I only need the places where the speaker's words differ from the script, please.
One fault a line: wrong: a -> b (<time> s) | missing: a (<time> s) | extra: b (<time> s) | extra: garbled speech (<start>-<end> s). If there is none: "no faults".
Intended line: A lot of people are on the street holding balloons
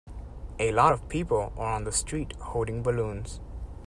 no faults